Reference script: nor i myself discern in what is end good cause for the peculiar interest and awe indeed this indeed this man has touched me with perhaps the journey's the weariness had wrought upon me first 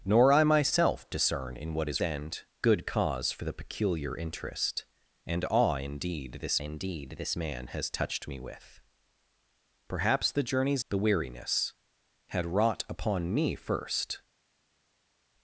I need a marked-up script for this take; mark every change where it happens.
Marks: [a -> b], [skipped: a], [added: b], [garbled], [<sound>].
nor i myself discern in what is end good cause for the peculiar interest and awe indeed this indeed this man has touched me with perhaps the journey's the weariness had wrought upon me first